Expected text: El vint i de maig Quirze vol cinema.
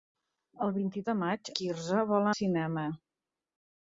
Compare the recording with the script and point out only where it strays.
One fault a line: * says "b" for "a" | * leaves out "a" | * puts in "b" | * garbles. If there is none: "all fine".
all fine